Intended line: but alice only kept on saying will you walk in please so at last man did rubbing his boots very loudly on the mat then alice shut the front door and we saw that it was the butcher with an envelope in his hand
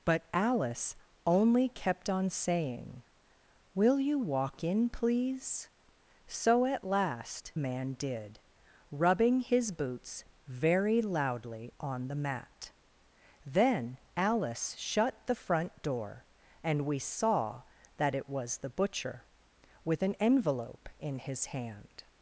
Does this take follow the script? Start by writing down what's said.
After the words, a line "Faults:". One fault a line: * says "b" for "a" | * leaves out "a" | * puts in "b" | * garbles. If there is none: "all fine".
but alice only kept on saying will you walk in please so at last man did rubbing his boots very loudly on the mat then alice shut the front door and we saw that it was the butcher with an envelope in his hand
Faults:
all fine